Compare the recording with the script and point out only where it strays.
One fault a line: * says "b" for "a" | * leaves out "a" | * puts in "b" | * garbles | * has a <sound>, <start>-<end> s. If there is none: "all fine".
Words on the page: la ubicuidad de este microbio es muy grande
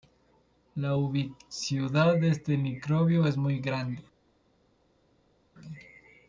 all fine